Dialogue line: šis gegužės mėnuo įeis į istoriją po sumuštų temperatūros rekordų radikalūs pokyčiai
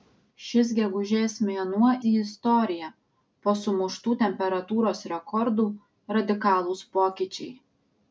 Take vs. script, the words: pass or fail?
fail